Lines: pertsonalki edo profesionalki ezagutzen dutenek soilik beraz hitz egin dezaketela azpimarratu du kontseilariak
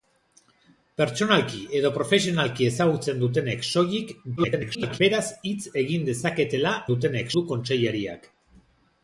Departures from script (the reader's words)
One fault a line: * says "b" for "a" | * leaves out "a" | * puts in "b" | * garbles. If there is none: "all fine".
* garbles
* says "dutenek" for "azpimarratu"